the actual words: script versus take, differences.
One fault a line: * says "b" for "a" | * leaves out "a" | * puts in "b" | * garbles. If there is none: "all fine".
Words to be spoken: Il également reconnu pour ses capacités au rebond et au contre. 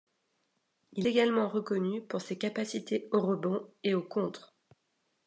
all fine